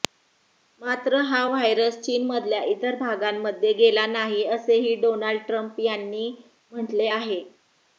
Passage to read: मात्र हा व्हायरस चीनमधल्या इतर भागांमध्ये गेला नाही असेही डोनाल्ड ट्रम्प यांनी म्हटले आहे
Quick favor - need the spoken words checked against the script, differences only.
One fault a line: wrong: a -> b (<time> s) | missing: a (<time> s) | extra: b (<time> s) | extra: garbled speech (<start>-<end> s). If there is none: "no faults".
no faults